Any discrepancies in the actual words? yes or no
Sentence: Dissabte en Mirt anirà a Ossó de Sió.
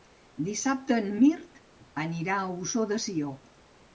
no